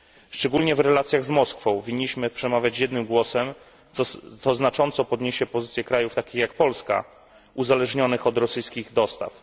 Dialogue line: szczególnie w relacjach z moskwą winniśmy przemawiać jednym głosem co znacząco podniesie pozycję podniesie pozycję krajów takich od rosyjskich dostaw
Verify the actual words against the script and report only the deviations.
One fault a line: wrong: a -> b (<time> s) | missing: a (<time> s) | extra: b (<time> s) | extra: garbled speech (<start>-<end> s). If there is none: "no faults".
wrong: podniesie pozycję krajów takich -> krajów takich jak polska uzależnionych (5.8 s)